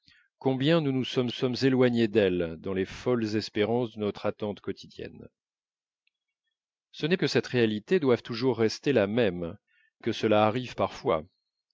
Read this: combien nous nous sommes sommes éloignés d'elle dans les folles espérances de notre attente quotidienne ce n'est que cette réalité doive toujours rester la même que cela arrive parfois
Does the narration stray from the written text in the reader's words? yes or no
no